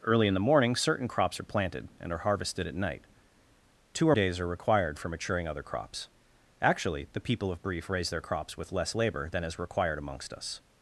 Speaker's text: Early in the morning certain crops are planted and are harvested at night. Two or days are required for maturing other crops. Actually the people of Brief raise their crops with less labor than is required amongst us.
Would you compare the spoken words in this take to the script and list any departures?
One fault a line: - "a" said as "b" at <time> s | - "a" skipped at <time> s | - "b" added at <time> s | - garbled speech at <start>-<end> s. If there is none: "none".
none